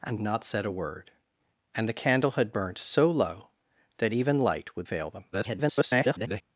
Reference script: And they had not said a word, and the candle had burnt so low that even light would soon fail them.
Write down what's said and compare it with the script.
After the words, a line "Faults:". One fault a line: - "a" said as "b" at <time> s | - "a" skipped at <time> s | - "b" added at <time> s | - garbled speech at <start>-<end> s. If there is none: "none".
And not said a word, and the candle had burnt so low that even light would fail them. [garbled]
Faults:
- "they had" skipped at 0.2 s
- "soon" skipped at 4.9 s
- garbled speech at 5.3-6.4 s